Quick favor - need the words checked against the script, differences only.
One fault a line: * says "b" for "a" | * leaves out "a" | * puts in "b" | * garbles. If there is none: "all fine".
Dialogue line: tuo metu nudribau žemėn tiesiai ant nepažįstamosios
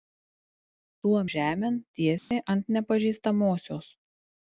* leaves out "metu nudribau"